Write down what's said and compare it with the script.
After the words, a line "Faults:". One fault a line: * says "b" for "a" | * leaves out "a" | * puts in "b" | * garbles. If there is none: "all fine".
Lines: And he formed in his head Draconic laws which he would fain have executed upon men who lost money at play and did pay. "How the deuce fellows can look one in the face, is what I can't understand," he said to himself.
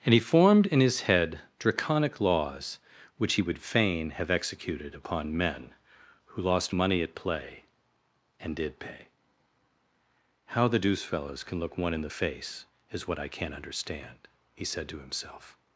And he formed in his head Draconic laws which he would fain have executed upon men who lost money at play and did pay. "How the deuce fellows can look one in the face, is what I can't understand," he said to himself.
Faults:
all fine